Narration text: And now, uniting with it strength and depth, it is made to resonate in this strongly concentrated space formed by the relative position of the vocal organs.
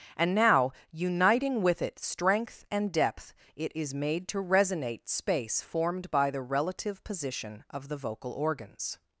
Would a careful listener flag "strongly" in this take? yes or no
yes